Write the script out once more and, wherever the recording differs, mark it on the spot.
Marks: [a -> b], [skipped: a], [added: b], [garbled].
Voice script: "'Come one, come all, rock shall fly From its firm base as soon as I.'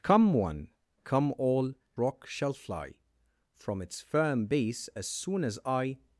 "'Come one, come all, rock shall fly From its firm base as soon as I.'